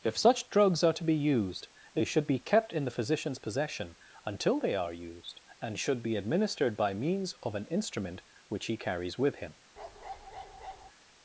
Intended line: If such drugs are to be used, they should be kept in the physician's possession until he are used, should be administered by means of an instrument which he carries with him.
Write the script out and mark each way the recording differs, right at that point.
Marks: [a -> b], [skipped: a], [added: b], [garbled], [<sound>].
If such drugs are to be used, they should be kept in the physician's possession until [he -> they] are used, [added: and] should be administered by means of an instrument which he carries with him. [bark]